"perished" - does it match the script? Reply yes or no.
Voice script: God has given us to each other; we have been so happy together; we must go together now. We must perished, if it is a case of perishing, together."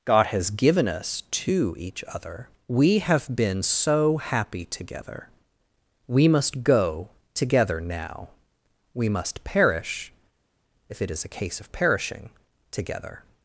no